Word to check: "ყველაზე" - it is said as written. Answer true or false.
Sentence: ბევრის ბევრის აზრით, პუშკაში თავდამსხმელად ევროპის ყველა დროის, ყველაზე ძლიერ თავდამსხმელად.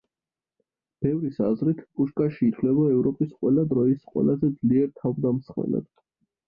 true